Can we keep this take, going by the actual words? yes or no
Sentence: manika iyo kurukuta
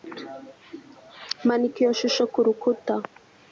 no